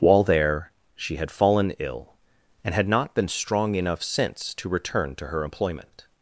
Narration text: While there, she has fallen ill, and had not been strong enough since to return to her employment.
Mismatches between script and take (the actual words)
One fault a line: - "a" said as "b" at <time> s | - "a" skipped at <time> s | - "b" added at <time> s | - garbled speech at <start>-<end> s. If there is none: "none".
- "has" said as "had" at 1.2 s